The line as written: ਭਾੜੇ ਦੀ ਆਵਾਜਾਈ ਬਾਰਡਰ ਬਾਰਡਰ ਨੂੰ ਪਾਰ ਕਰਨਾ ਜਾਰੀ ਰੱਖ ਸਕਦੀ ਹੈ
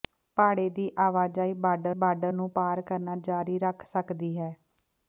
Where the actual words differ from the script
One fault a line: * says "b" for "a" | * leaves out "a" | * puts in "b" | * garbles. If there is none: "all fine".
all fine